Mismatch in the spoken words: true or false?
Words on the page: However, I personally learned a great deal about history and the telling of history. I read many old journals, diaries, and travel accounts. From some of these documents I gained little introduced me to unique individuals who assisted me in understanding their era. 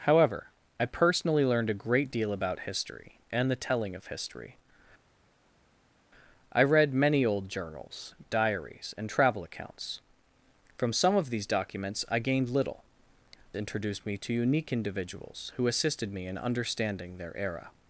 false